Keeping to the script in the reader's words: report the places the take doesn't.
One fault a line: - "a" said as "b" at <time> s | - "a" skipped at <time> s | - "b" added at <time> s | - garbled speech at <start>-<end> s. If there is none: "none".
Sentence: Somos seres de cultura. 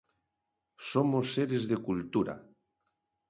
none